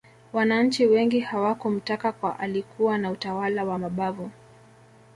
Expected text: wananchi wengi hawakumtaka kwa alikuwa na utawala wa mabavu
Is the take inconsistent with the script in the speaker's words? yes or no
no